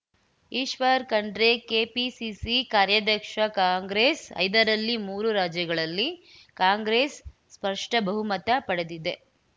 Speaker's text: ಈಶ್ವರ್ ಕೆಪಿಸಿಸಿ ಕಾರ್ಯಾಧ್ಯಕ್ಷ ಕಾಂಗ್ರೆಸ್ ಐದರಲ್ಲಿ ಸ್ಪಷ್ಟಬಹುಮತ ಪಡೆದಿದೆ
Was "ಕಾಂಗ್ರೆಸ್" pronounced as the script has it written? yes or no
yes